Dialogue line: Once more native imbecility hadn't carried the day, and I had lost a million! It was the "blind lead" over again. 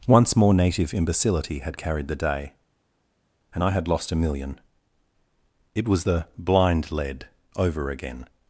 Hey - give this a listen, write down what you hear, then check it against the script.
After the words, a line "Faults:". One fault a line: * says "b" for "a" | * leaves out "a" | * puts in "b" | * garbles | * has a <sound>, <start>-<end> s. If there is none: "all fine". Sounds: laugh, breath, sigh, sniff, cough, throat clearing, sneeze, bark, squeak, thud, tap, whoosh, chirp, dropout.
Once more native imbecility had carried the day, and I had lost a million! It was the "blind lead" over again.
Faults:
* says "had" for "hadn't"